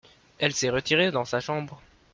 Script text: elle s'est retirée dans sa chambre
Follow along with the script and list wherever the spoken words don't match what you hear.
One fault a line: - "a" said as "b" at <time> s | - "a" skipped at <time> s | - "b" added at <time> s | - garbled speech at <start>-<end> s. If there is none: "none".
none